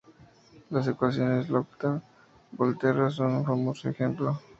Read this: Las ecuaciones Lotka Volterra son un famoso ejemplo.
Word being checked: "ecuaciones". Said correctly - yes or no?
yes